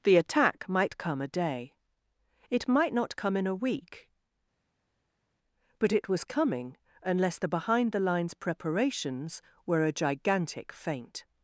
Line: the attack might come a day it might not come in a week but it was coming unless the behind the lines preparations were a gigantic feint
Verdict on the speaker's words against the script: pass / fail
pass